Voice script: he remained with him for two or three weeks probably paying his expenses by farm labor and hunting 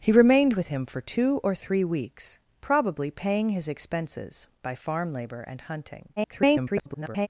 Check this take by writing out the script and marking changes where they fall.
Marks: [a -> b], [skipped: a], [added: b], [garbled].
he remained with him for two or three weeks probably paying his expenses by farm labor and hunting [garbled]